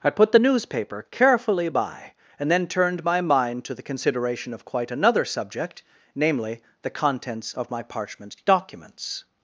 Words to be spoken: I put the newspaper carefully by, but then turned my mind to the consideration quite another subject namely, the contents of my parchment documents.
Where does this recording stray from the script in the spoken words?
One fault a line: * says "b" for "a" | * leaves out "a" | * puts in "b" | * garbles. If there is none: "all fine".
* says "and" for "but"
* puts in "of"